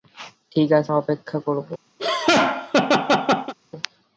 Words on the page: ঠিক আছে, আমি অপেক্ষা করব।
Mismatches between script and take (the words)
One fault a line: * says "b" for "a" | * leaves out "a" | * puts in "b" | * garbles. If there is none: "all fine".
* leaves out "আমি"